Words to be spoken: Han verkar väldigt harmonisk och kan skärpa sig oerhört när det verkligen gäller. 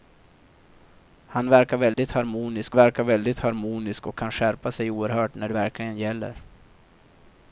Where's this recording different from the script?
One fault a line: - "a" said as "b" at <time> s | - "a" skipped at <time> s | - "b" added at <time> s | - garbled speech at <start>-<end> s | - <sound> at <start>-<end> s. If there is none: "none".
- dropout at 1.9-2.0 s
- "verkar väldigt harmonisk" added at 2.7 s